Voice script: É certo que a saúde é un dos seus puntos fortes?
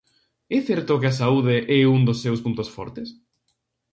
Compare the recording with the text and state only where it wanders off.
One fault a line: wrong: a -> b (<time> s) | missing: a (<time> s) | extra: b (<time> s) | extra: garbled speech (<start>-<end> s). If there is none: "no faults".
no faults